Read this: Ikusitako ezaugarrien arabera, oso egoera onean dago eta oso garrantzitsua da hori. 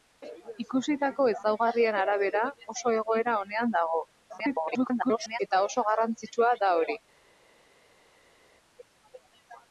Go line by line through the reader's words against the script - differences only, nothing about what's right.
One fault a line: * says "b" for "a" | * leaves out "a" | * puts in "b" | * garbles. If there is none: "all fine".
* garbles